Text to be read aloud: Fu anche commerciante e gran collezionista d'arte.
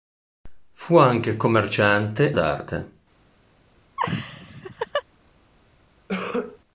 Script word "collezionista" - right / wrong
wrong